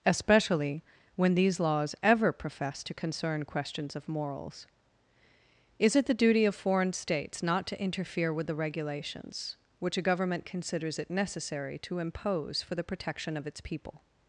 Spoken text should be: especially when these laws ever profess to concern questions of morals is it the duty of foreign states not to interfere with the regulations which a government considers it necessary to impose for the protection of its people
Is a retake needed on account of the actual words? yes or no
no